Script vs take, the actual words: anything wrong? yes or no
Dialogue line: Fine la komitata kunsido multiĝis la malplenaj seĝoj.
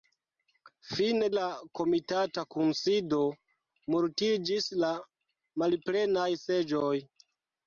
no